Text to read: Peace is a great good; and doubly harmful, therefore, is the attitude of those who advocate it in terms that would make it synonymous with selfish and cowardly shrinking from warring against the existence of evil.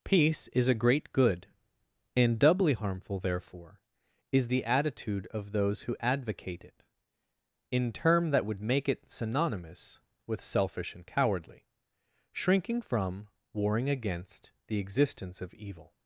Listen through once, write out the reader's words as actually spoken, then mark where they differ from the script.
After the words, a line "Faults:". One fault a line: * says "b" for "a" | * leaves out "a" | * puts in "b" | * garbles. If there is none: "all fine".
Peace is a great good; and doubly harmful, therefore, is the attitude of those who advocate it in term that would make it synonymous with selfish and cowardly shrinking from warring against the existence of evil.
Faults:
* says "term" for "terms"